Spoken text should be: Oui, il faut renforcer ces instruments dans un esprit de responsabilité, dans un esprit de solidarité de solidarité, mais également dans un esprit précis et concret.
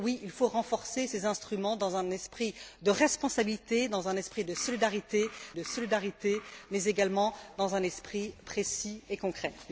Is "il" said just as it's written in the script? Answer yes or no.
yes